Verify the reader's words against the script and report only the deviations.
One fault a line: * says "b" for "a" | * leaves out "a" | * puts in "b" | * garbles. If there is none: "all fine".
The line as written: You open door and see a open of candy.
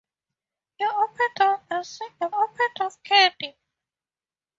all fine